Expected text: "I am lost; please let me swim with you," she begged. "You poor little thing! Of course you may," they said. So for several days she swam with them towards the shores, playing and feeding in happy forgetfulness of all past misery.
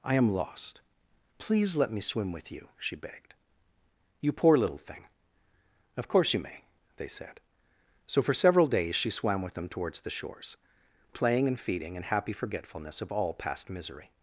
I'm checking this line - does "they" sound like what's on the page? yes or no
yes